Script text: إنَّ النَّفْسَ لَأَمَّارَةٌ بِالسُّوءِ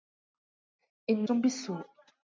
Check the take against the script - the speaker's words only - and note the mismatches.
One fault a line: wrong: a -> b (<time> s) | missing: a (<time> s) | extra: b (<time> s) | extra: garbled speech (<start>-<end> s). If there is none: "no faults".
missing: النَّفْسَ لَأَمَّارَةٌ (1.3 s)